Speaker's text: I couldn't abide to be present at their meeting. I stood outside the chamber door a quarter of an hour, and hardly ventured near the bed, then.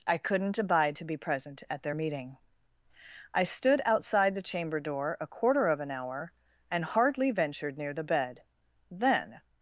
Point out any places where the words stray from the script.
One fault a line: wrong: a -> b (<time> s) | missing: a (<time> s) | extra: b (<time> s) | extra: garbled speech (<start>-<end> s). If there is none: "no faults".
no faults